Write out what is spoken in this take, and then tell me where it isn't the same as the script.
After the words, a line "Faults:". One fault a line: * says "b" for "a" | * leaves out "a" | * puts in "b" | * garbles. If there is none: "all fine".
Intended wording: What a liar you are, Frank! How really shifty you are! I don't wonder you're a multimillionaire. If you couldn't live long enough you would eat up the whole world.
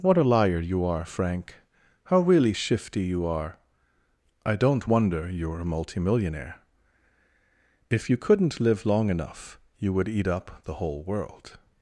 What a liar you are, Frank! How really shifty you are! I don't wonder you're a multimillionaire. If you couldn't live long enough you would eat up the whole world.
Faults:
all fine